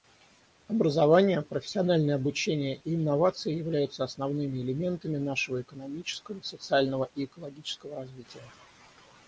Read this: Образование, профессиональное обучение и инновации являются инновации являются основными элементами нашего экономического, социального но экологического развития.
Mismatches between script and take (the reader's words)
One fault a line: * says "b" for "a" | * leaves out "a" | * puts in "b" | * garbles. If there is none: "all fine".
* leaves out "инновации являются"
* says "и" for "но"